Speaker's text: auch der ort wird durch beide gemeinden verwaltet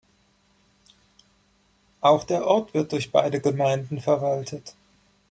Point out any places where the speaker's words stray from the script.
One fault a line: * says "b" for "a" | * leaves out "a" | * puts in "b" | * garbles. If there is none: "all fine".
all fine